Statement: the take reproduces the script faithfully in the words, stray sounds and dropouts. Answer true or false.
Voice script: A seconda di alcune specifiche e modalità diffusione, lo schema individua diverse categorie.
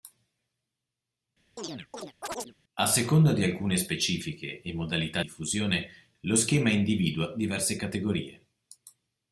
false